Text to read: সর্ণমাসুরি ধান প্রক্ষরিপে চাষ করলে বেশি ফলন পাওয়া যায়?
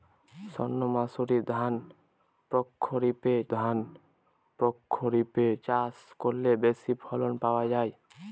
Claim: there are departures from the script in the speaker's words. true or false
true